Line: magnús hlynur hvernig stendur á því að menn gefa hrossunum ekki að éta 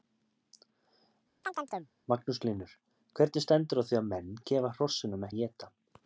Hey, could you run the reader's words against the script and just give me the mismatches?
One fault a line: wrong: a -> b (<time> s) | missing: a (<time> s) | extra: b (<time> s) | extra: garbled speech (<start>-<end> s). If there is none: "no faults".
missing: ekki (5.3 s)